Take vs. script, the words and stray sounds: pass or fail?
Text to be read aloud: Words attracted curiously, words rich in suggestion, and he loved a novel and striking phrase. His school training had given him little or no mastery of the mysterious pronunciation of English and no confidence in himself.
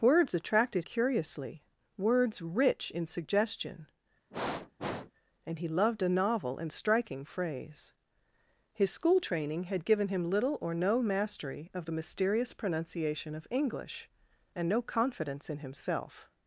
fail